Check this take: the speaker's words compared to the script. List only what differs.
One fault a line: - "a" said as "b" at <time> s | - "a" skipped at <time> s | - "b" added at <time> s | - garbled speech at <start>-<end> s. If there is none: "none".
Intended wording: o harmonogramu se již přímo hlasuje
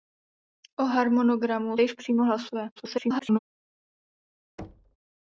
- "se" skipped at 1.8 s
- garbled speech at 2.8-3.4 s